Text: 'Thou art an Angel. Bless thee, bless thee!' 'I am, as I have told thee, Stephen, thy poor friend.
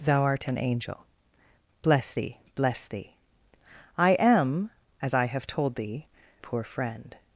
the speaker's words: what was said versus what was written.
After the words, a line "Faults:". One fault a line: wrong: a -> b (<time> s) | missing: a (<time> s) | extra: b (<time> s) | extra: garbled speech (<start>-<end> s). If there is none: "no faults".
'Thou art an Angel. Bless thee, bless thee!' 'I am, as I have told thee, Poor friend.
Faults:
missing: Stephen thy (6.1 s)